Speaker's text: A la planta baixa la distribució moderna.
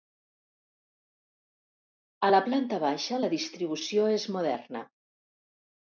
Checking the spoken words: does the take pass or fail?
fail